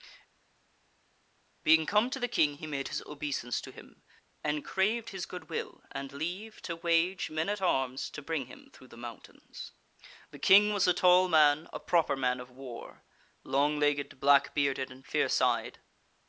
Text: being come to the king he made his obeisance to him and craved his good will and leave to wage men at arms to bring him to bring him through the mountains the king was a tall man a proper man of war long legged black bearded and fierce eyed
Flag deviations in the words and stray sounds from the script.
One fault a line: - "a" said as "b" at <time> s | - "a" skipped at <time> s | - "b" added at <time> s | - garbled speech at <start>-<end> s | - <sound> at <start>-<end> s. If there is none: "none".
- "to bring him" skipped at 8.7 s